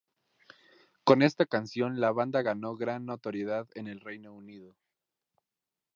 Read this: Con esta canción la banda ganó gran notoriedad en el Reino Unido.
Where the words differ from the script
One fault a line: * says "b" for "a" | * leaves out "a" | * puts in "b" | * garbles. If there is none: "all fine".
all fine